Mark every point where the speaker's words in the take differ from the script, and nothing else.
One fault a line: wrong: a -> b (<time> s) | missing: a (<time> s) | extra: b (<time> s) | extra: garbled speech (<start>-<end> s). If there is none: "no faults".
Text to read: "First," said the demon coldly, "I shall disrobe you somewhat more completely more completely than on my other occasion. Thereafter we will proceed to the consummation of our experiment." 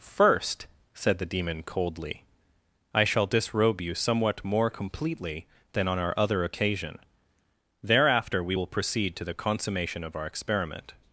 missing: more completely (5.5 s)
wrong: my -> our (6.0 s)